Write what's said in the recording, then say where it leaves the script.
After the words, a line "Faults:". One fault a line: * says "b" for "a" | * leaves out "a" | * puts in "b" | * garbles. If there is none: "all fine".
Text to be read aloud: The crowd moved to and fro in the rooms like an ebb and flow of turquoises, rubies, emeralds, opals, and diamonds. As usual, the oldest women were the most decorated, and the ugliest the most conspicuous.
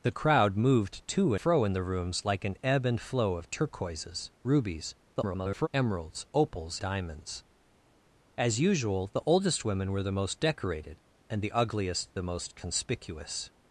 The crowd moved to fro in the rooms like an ebb and flow of turquoises, rubies, [garbled] emeralds, opals, diamonds. As usual, the oldest women were the most decorated, and the ugliest the most conspicuous.
Faults:
* leaves out "and"
* garbles
* leaves out "and"